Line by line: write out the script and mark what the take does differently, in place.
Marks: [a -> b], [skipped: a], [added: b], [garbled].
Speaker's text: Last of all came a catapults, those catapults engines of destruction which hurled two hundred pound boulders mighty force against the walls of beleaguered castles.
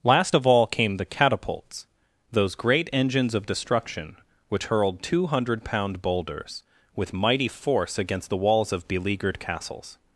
Last of all came [a -> the] catapults, those [catapults -> great] engines of destruction which hurled two hundred pound boulders [added: with] mighty force against the walls of beleaguered castles.